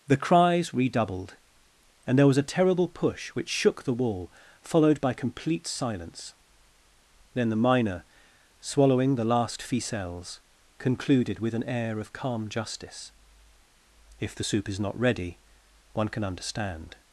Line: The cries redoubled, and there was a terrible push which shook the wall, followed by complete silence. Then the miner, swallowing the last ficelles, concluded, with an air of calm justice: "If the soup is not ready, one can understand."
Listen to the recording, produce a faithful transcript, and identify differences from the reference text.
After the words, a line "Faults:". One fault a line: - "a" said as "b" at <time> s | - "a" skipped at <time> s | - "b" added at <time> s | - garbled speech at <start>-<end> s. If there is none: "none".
The cries redoubled, and there was a terrible push which shook the wall, followed by complete silence. Then the miner, swallowing the last ficelles, concluded, with an air of calm justice: "If the soup is not ready, one can understand."
Faults:
none